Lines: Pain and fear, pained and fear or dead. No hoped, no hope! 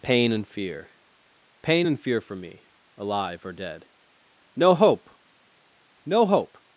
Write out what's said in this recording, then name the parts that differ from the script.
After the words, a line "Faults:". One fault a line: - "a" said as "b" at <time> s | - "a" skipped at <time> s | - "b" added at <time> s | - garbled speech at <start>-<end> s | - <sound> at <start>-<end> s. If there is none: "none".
Pain and fear, pain and fear for me, alive or dead. No hope, no hope!
Faults:
- "pained" said as "pain" at 1.6 s
- "for me alive" added at 2.2 s
- "hoped" said as "hope" at 4.8 s